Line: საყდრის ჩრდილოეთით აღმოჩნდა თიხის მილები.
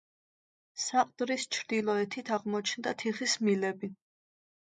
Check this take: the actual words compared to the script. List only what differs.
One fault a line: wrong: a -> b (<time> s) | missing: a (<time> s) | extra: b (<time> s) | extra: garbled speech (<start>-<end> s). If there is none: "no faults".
no faults